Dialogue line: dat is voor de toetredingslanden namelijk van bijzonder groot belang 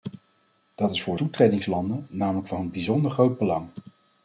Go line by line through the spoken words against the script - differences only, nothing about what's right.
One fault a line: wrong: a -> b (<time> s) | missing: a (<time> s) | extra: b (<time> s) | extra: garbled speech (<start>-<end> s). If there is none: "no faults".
missing: de (1.1 s)